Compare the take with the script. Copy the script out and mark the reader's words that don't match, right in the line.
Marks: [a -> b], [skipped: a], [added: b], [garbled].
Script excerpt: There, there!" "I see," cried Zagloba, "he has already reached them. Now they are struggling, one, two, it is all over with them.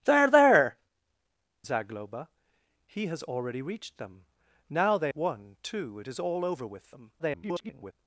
There, there!" [skipped: "I see," cried] Zagloba, "he has already reached them. Now they [skipped: are struggling,] one, two, it is all over with them. [garbled]